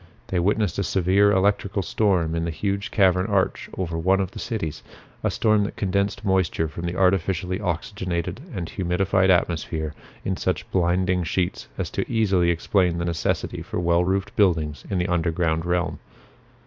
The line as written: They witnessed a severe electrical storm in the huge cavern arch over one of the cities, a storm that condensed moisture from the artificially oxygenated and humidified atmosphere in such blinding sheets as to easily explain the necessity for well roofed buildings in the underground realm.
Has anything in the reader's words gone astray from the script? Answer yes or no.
no